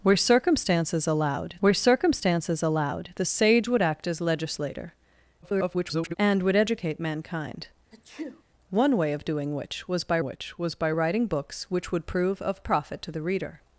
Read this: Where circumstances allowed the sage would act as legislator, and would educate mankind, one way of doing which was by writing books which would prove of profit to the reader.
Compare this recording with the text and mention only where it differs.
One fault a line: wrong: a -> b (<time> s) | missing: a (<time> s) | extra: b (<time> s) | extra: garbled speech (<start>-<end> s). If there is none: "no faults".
extra: where circumstances allowed (1.6 s)
extra: garbled speech (5.4-6.1 s)
extra: which was by (10.2 s)